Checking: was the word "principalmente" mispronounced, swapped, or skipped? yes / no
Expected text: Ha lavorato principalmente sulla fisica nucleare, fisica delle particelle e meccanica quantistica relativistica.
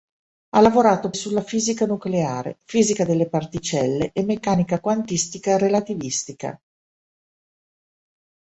yes